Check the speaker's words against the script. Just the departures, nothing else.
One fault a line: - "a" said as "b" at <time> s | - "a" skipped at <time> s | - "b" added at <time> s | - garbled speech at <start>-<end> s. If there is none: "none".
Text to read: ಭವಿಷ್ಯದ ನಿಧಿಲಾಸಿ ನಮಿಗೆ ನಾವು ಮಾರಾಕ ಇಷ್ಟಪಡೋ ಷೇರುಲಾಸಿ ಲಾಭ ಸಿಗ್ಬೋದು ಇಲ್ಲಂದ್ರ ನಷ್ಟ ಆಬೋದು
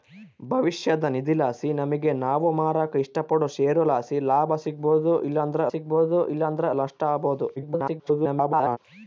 - "ಸಿಗ್ಬೋದು ಇಲ್ಲಂದ್ರ" added at 5.7 s
- garbled speech at 7.6-8.8 s